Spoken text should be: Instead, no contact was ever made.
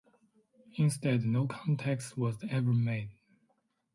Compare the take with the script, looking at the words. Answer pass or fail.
pass